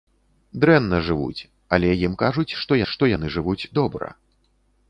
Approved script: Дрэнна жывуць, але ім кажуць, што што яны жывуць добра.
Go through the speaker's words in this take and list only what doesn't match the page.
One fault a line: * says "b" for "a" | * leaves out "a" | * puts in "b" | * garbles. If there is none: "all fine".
all fine